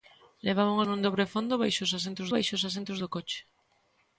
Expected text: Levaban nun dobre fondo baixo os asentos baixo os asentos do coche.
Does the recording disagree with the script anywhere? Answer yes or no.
no